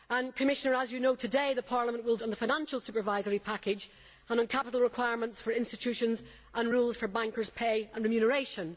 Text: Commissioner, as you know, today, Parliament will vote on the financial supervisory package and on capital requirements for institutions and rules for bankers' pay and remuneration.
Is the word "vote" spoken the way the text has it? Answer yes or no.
no